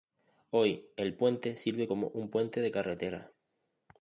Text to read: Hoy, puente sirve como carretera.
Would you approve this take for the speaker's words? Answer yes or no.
no